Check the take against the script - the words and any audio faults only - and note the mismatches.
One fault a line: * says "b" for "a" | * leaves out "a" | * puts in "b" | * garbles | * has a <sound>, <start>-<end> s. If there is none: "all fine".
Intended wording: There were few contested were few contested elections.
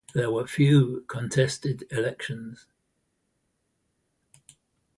* leaves out "were few contested"